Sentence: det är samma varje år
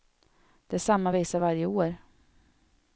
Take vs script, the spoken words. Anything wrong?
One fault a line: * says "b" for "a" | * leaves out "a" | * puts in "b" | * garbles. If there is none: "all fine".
* puts in "visa"